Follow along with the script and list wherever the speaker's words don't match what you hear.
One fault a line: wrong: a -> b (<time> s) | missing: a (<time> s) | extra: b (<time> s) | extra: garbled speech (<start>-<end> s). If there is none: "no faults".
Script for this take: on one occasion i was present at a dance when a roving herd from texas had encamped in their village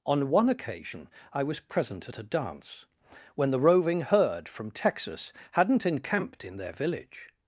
wrong: a -> the (3.5 s)
wrong: had -> hadn't (5.5 s)